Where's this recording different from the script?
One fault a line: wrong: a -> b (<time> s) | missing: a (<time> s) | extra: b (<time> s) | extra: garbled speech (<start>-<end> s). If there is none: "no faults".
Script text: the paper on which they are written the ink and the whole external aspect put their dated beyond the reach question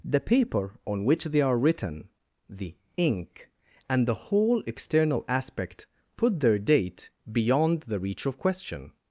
wrong: dated -> date (6.6 s)
extra: of (8.2 s)